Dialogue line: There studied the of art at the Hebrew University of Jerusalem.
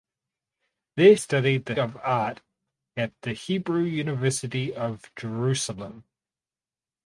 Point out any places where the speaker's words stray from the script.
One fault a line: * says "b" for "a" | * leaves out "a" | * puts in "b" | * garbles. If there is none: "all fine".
all fine